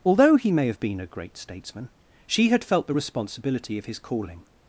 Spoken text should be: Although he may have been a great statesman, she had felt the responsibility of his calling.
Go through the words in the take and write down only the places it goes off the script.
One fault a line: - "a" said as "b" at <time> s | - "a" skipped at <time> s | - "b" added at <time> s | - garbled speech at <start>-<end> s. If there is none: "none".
none